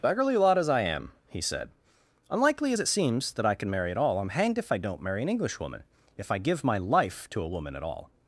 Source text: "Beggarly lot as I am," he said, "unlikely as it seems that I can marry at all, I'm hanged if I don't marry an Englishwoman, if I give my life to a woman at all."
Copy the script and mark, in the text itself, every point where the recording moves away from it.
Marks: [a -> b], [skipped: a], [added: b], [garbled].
"Beggarly lot as I am," he said, "unlikely as it seems that I can marry at all, I'm hanged if I don't marry an Englishwoman, if I give my life to a woman at all."